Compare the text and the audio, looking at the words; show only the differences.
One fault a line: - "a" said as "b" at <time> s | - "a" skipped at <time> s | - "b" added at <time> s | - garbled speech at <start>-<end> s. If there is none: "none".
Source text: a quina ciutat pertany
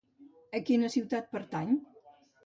none